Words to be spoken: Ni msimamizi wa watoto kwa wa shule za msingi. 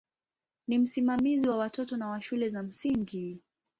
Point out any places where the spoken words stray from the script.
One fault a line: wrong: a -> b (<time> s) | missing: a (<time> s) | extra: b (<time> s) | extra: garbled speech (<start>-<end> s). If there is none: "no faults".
wrong: kwa -> na (2.0 s)